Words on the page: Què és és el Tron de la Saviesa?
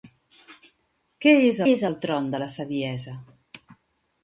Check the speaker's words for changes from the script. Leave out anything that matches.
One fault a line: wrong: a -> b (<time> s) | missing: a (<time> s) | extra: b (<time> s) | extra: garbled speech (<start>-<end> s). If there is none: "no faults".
no faults